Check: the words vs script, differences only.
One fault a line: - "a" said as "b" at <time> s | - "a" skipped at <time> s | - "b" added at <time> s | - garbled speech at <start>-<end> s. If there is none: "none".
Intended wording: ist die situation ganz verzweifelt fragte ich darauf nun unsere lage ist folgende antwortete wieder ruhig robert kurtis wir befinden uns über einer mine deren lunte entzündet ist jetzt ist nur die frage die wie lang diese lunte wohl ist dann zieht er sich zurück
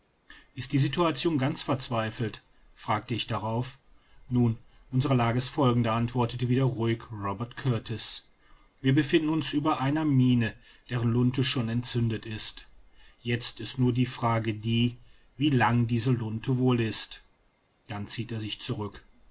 - "schon" added at 11.4 s